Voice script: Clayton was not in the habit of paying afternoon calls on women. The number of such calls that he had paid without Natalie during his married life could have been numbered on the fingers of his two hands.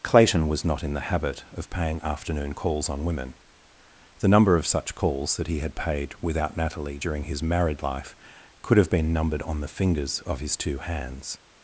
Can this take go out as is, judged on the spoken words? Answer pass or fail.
pass